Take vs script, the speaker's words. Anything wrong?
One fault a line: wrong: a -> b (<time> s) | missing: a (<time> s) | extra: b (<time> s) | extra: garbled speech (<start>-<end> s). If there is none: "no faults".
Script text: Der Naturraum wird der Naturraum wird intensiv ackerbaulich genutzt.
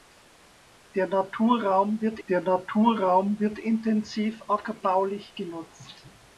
no faults